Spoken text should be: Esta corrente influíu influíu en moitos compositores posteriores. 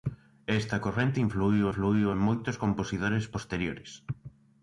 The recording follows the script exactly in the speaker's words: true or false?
true